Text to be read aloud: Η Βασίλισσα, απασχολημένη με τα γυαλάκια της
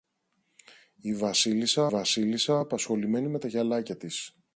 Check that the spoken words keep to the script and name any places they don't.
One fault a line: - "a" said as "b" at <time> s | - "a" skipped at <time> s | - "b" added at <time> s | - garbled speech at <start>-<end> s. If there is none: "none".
- "Βασίλισσα" added at 1.9 s